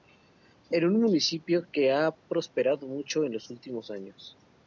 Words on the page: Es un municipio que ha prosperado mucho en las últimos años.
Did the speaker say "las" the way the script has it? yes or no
no